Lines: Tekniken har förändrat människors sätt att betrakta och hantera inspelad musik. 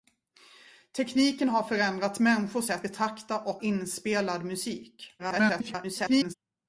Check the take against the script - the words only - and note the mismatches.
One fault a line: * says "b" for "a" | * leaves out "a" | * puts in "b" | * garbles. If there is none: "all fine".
* leaves out "att"
* leaves out "hantera"
* garbles